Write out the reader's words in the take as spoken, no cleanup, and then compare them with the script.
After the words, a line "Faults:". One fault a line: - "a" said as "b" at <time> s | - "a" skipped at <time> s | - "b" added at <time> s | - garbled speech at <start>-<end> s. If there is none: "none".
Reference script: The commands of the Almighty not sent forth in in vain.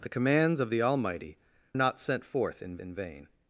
The commands of the Almighty not sent forth in in vain.
Faults:
none